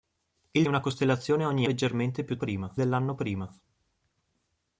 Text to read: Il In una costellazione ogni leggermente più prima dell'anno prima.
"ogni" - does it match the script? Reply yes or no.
yes